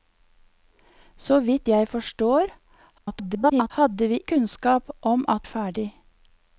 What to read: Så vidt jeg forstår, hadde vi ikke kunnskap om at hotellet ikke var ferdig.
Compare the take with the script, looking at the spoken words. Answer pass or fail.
fail